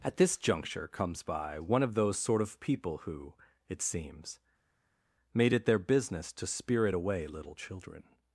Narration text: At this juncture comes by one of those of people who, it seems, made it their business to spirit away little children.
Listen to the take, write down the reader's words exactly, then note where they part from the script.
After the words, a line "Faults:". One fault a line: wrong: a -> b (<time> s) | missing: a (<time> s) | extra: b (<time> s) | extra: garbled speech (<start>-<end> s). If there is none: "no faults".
At this juncture comes by one of those sort of people who, it seems, made it their business to spirit away little children.
Faults:
extra: sort (2.2 s)